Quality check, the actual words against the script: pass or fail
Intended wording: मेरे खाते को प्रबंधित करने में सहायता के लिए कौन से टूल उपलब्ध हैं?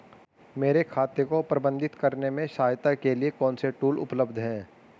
pass